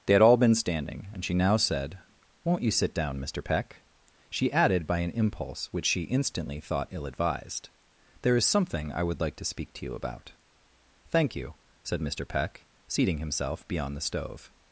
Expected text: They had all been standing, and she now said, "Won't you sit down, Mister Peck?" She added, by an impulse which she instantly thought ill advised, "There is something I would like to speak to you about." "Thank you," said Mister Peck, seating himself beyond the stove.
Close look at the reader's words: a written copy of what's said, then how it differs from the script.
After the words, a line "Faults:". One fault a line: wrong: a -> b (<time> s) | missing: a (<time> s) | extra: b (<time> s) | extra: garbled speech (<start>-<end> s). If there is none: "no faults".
They had all been standing, and she now said, "Won't you sit down, Mister Peck?" She added, by an impulse which she instantly thought ill advised, "There is something I would like to speak to you about." "Thank you," said Mister Peck, seating himself beyond the stove.
Faults:
no faults